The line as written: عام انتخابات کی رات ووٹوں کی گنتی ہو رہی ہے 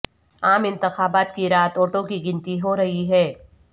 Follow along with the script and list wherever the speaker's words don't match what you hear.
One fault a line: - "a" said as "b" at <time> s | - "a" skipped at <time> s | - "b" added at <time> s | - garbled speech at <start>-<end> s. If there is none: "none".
none